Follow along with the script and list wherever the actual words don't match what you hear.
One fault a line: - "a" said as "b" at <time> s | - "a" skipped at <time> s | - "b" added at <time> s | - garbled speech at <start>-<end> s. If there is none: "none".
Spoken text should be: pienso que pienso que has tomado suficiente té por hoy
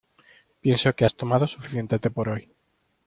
- "pienso que" skipped at 1.1 s